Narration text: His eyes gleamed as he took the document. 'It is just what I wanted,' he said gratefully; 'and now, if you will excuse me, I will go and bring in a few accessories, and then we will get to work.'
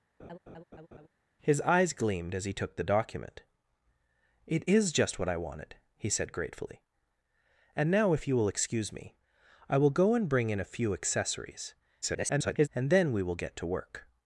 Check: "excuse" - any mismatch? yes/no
no